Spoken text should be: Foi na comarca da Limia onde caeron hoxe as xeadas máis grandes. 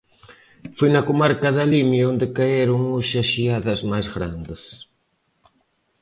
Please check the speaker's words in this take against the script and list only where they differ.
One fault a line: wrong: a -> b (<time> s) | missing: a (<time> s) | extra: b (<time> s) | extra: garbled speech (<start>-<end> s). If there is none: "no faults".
no faults